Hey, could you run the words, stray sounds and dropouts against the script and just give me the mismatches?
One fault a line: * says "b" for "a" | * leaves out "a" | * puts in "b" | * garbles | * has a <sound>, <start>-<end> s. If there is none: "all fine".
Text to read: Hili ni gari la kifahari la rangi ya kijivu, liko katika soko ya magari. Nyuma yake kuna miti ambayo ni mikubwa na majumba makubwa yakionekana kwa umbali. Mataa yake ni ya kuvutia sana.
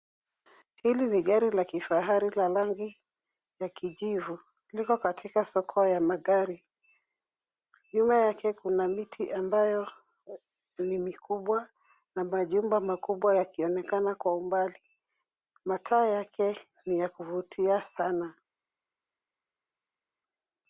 all fine